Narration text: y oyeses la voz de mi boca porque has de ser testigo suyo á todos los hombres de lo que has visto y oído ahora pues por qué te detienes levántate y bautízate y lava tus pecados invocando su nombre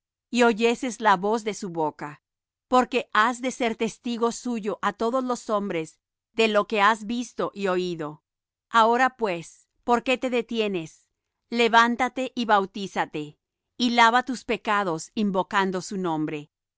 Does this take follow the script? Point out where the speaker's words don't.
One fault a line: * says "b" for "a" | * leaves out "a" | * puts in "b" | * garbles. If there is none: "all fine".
* says "su" for "mi"